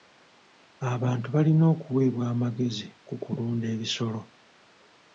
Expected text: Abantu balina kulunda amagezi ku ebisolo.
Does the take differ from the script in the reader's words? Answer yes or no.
yes